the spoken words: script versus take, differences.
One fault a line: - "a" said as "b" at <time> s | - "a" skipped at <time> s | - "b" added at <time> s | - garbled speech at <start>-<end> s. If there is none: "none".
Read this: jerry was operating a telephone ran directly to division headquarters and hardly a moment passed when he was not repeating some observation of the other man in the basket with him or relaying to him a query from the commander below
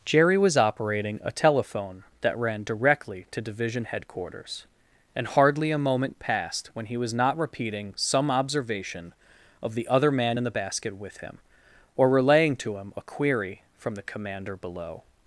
- "that" added at 2.2 s